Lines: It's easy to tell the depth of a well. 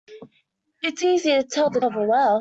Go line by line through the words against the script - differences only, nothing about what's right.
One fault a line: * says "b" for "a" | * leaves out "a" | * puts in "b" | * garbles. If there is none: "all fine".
* leaves out "depth"